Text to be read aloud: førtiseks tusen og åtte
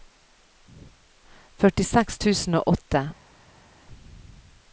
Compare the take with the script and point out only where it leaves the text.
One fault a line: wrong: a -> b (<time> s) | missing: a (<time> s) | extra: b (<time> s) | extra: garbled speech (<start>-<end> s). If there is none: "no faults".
no faults